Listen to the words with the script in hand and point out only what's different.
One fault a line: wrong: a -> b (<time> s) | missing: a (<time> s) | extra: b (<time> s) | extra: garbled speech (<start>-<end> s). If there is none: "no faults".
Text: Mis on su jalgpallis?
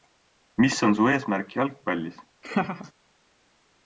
extra: eesmärk (1.1 s)